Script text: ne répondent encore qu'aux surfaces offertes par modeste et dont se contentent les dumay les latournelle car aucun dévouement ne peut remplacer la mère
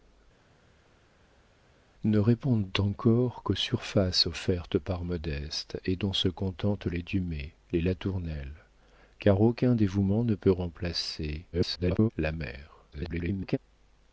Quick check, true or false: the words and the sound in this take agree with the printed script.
false